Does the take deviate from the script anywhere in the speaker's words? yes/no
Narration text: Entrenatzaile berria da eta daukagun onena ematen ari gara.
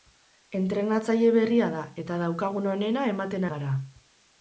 yes